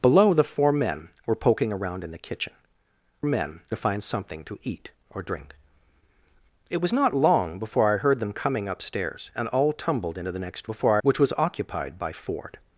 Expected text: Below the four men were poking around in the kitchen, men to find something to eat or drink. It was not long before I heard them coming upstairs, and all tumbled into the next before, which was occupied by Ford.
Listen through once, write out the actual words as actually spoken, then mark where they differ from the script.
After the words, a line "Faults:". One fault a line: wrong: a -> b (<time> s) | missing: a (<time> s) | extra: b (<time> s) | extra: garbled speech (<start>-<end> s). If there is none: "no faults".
Below the four men were poking around in the kitchen, men to find something to eat or drink. It was not long before I heard them coming upstairs, and all tumbled into the next before, which was occupied by Ford.
Faults:
no faults